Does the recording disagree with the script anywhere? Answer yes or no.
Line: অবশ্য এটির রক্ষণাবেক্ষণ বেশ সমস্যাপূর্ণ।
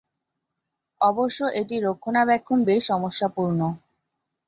no